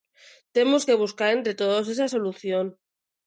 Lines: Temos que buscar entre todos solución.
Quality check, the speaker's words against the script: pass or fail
fail